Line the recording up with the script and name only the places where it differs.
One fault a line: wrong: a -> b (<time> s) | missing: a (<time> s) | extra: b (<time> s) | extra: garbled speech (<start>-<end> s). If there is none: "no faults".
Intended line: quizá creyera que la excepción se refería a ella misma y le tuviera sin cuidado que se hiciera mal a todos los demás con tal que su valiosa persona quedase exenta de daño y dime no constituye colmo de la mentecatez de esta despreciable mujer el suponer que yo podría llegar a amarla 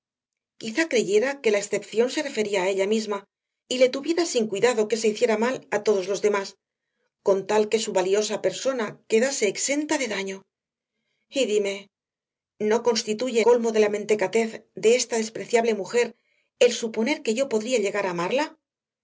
no faults